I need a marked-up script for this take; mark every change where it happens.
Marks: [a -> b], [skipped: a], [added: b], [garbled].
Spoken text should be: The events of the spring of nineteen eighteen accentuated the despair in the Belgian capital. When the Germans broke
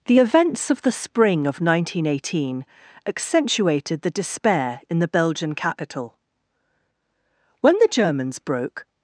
The events of the spring of nineteen eighteen accentuated the despair in the Belgian capital. When the Germans broke